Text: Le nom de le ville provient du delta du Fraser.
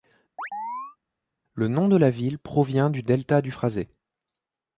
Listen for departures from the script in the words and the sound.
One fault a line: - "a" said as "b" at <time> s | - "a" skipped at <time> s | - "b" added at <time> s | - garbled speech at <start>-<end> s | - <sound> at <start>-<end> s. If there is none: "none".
- chirp at 0.4-1.0 s
- "le" said as "la" at 2.0 s